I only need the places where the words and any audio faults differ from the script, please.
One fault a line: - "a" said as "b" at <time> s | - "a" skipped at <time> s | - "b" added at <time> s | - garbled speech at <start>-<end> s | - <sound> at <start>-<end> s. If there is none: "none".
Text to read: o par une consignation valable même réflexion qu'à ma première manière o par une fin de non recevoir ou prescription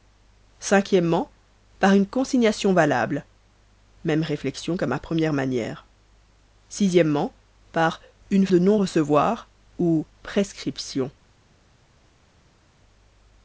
- "fin" skipped at 8.5 s